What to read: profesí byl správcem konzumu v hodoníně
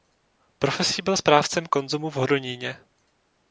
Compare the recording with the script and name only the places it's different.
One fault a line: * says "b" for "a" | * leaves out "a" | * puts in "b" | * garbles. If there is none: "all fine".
all fine